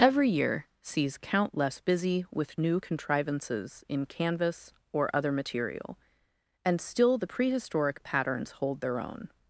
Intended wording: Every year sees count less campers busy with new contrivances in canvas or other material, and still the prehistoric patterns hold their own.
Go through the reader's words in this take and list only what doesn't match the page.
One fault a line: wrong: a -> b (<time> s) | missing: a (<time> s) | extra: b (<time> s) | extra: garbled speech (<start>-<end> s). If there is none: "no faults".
missing: campers (1.8 s)